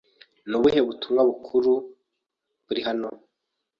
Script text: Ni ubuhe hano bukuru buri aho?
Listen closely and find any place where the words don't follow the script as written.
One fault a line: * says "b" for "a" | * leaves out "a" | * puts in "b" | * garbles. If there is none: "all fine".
* says "butumwa" for "hano"
* says "hano" for "aho"